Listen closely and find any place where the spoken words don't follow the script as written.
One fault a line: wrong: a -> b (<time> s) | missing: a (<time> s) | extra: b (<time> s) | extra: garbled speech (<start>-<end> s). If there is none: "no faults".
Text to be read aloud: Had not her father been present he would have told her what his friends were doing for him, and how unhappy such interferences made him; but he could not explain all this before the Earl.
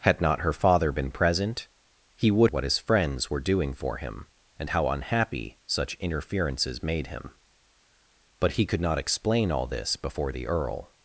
missing: have told her (2.5 s)